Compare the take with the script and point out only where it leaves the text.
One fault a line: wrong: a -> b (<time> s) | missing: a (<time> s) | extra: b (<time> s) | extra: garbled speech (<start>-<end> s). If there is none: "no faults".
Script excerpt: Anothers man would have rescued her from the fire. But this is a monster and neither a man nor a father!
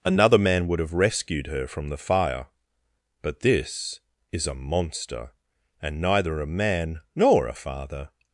wrong: Anothers -> Another (0.0 s)